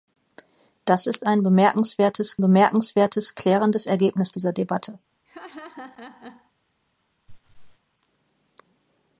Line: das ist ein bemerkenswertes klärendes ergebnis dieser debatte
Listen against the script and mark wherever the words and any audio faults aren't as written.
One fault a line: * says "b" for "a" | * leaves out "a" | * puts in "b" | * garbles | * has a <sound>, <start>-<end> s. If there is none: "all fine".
* puts in "bemerkenswertes"
* has a laugh, 5.2-6.5 s
* has a laugh, 7.3-7.8 s